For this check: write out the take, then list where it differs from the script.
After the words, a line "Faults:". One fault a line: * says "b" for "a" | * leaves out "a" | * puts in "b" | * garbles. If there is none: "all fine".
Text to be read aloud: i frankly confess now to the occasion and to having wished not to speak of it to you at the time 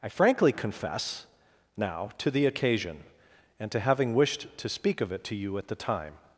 i frankly confess now to the occasion and to having wished to speak of it to you at the time
Faults:
* leaves out "not"